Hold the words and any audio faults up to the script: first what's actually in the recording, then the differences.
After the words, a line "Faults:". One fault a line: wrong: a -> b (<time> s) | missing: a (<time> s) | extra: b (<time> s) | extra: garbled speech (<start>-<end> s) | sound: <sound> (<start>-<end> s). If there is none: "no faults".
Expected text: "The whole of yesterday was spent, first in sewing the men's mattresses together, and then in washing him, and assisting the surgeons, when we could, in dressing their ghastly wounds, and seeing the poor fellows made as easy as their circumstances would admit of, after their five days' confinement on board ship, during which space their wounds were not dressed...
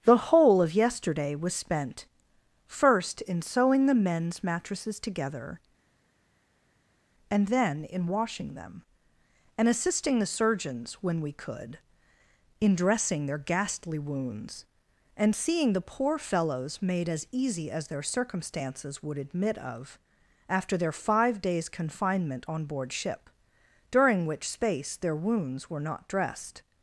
"The whole of yesterday was spent, first in sewing the men's mattresses together, and then in washing them, and assisting the surgeons, when we could, in dressing their ghastly wounds, and seeing the poor fellows made as easy as their circumstances would admit of, after their five days' confinement on board ship, during which space their wounds were not dressed...
Faults:
wrong: him -> them (8.5 s)